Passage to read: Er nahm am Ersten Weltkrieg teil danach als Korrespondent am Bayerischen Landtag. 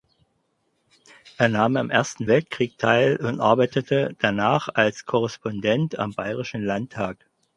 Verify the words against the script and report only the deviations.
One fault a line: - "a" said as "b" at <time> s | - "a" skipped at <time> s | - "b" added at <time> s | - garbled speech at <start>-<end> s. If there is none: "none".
- "und arbeitete" added at 3.2 s